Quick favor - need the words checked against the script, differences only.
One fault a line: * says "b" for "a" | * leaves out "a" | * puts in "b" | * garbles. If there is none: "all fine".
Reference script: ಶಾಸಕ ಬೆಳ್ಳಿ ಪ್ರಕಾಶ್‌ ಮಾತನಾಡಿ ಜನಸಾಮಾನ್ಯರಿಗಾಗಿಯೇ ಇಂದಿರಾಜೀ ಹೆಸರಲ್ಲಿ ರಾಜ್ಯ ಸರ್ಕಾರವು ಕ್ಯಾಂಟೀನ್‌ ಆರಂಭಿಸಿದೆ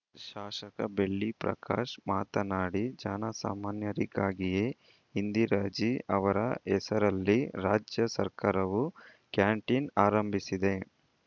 * puts in "ಅವರ"